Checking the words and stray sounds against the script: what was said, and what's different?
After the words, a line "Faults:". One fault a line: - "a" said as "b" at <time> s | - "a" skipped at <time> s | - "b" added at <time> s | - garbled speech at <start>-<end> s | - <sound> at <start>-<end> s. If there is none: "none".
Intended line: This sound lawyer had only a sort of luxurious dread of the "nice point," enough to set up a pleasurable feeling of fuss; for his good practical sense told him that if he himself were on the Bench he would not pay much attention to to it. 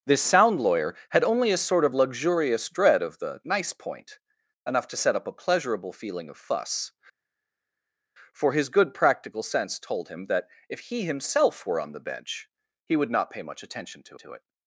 This sound lawyer had only a sort of luxurious dread of the "nice point," enough to set up a pleasurable feeling of fuss; for his good practical sense told him that if he himself were on the Bench he would not pay much attention to to it.
Faults:
none